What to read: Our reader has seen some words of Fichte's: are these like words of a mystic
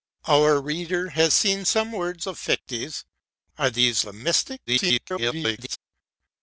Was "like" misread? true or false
true